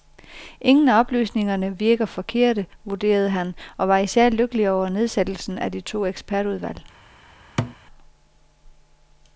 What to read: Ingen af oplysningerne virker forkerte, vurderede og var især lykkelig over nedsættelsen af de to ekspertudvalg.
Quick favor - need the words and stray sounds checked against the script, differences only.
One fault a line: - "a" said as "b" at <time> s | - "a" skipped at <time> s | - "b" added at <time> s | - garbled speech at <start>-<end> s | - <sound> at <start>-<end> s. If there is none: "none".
- "han" added at 3.3 s
- thud at 7.6-7.8 s